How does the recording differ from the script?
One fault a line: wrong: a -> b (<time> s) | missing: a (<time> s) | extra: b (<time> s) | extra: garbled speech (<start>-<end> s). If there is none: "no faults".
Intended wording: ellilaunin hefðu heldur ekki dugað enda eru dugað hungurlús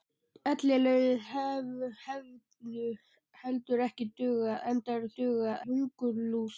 no faults